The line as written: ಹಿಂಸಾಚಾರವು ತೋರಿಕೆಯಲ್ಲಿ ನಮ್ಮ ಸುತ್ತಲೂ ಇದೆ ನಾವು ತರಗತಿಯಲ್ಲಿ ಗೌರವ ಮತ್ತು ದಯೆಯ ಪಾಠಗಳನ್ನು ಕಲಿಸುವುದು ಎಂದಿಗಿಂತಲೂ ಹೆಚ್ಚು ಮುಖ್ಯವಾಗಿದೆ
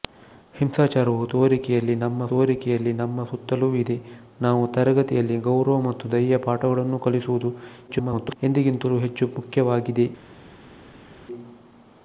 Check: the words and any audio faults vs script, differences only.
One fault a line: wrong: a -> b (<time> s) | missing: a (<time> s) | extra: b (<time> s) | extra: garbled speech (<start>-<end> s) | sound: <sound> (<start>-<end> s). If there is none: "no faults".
extra: ತೋರಿಕೆಯಲ್ಲಿ ನಮ್ಮ (2.3 s)
extra: garbled speech (7.9-8.4 s)